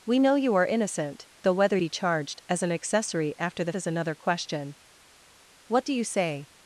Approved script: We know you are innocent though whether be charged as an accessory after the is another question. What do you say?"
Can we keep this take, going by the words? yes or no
yes